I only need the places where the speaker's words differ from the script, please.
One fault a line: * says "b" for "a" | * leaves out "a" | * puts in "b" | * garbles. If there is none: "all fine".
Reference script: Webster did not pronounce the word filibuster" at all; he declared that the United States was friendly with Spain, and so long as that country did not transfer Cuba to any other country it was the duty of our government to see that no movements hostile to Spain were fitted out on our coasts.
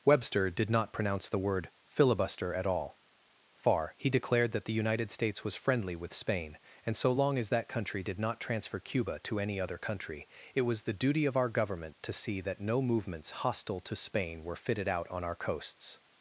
* puts in "far"